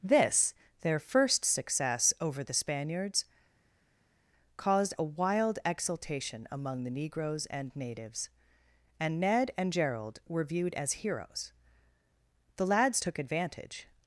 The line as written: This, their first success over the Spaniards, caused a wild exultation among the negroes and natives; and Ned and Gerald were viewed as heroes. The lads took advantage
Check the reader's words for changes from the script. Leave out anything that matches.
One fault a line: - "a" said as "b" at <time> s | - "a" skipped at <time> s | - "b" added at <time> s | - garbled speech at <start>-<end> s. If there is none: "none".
none